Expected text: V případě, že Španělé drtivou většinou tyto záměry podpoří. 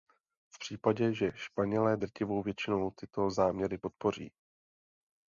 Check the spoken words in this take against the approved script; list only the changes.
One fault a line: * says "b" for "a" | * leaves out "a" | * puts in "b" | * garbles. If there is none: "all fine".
all fine